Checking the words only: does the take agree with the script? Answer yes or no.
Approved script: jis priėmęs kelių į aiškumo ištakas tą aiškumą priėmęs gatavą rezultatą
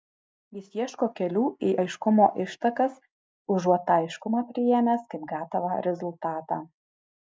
no